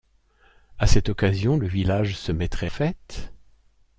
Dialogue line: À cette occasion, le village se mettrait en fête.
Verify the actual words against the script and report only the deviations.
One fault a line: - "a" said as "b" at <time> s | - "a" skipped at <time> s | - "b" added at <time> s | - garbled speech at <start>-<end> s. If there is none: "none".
- "en" skipped at 2.7 s